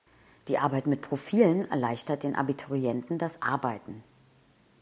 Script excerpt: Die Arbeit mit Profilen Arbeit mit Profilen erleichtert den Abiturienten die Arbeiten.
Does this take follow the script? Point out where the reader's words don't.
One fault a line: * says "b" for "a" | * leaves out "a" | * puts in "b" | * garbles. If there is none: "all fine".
* leaves out "Arbeit mit Profilen"
* says "das" for "die"